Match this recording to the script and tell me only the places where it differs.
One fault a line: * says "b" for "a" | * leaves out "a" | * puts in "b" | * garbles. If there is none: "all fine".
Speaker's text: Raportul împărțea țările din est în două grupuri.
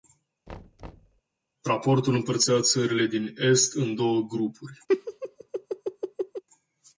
all fine